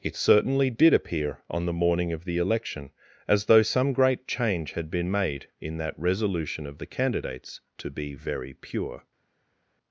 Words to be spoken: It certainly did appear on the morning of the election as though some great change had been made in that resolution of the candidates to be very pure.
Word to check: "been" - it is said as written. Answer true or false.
true